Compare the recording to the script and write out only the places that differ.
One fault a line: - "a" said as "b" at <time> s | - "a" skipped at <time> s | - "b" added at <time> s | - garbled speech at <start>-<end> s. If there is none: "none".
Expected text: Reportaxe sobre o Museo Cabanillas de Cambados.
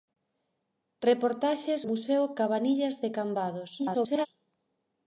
- "sobre" skipped at 1.7 s
- garbled speech at 3.8-4.3 s